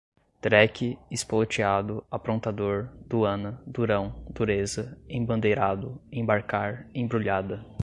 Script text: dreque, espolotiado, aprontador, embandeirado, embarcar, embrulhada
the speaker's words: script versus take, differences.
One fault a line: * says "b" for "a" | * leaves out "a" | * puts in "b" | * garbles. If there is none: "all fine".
* puts in "duana durão dureza"